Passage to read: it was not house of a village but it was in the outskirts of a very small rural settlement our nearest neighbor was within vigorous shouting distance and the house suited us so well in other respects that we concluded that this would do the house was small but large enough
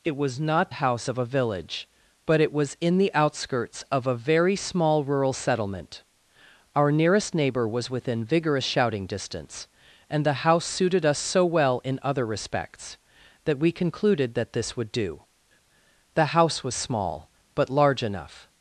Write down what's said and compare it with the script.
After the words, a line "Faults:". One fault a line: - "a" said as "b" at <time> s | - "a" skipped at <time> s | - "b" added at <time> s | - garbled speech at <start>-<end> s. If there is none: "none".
it was not house of a village but it was in the outskirts of a very small rural settlement our nearest neighbor was within vigorous shouting distance and the house suited us so well in other respects that we concluded that this would do the house was small but large enough
Faults:
none